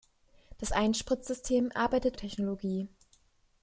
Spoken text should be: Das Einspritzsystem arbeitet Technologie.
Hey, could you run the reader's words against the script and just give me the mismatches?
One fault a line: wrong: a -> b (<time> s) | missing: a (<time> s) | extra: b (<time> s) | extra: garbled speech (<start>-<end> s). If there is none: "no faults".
no faults